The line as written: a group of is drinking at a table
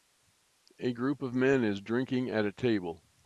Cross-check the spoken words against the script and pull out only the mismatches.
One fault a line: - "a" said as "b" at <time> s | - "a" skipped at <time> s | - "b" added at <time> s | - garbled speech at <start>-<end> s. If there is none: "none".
- "men" added at 1.3 s